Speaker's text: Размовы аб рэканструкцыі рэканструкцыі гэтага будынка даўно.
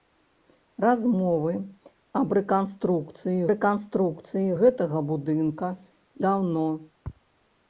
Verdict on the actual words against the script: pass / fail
pass